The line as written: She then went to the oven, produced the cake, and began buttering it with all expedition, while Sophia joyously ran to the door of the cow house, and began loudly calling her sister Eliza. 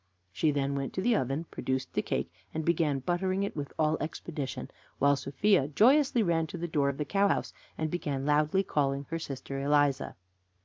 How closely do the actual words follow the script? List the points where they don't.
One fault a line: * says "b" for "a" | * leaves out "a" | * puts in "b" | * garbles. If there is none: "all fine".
all fine